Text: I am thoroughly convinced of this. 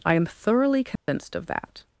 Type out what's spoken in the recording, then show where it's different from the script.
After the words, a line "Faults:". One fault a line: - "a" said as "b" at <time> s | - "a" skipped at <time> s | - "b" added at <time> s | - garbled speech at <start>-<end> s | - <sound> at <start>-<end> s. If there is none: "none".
I am thoroughly convinced of that.
Faults:
- dropout at 1.0-1.1 s
- "this" said as "that" at 1.5 s